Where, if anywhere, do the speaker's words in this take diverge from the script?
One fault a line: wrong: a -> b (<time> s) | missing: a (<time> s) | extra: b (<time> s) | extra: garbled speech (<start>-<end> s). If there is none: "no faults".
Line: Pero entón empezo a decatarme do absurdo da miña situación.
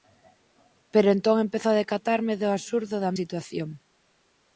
missing: miña (3.1 s)